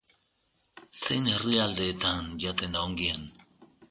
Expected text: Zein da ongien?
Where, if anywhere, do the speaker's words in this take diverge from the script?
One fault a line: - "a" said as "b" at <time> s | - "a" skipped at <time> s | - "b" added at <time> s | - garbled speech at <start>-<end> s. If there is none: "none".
- "herrialdeetan jaten" added at 1.3 s